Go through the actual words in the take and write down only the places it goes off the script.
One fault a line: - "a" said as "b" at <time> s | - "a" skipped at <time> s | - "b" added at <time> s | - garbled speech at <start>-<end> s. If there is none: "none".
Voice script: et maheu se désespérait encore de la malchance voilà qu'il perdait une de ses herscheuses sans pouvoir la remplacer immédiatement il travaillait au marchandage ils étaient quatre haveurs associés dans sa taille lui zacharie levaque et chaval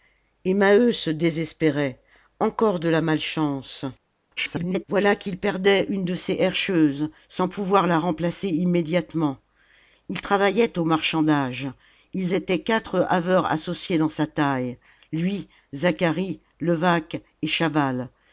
- garbled speech at 4.4-4.8 s